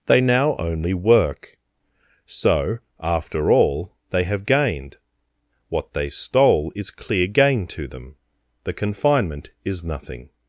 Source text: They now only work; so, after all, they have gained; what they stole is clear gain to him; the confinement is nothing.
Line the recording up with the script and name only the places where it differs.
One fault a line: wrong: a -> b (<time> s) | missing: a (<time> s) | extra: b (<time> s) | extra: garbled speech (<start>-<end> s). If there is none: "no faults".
wrong: him -> them (7.9 s)